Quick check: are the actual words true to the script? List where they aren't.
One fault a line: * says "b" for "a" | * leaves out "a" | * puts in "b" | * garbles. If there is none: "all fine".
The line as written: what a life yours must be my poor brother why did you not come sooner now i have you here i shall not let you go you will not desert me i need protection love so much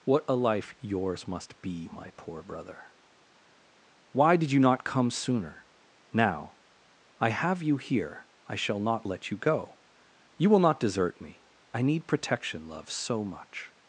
all fine